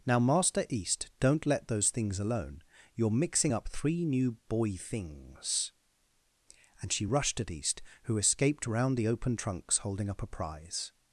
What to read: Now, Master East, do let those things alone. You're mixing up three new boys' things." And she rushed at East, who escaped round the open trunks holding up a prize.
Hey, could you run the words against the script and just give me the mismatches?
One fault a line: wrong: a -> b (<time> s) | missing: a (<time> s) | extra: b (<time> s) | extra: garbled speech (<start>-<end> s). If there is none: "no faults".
wrong: do -> don't (1.2 s)
wrong: boys -> boy (4.5 s)